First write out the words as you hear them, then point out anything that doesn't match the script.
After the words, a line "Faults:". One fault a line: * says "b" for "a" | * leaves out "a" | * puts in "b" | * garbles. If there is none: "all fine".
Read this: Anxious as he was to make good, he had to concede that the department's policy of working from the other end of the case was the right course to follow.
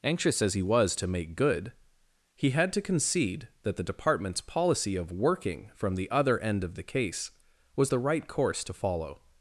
Anxious as he was to make good, he had to concede that the department's policy of working from the other end of the case was the right course to follow.
Faults:
all fine